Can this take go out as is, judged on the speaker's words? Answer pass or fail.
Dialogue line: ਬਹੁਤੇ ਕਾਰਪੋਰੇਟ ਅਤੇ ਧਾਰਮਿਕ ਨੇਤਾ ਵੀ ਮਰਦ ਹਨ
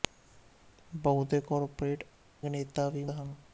fail